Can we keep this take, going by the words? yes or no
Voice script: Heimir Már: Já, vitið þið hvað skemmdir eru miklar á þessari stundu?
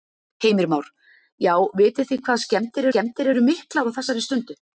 no